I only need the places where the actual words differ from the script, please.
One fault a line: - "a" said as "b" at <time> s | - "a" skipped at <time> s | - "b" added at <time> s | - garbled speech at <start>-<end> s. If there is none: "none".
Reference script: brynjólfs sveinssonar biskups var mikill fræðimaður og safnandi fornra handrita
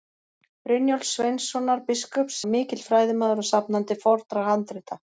none